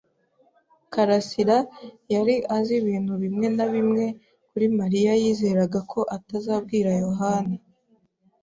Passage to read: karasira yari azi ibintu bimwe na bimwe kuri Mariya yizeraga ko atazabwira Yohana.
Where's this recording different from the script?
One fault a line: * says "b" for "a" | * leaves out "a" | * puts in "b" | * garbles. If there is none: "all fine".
all fine